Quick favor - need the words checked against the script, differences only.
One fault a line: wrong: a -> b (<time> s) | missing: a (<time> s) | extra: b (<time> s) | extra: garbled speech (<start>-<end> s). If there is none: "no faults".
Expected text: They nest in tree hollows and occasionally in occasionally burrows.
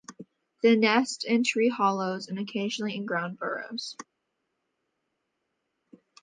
wrong: occasionally -> ground (3.0 s)